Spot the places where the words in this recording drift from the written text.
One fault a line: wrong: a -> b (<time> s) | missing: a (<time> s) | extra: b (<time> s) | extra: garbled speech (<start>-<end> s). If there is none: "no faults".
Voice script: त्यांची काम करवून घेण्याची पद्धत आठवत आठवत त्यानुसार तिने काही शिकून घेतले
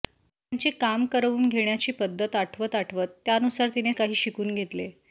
no faults